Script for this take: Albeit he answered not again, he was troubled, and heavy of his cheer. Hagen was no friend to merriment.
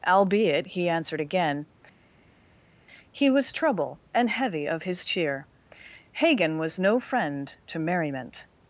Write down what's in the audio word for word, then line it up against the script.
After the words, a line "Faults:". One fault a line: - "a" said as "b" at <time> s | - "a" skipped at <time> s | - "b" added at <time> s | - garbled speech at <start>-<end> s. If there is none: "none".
Albeit he answered again, he was trouble, and heavy of his cheer. Hagen was no friend to merriment.
Faults:
- "not" skipped at 1.2 s
- "troubled" said as "trouble" at 3.5 s